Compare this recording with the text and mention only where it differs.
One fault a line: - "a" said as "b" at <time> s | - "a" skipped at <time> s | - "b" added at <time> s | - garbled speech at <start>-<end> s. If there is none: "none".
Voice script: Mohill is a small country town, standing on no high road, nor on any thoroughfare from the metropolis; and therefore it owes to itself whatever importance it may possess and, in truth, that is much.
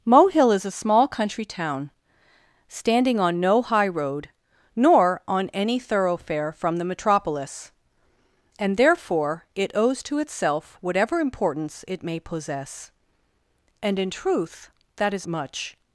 none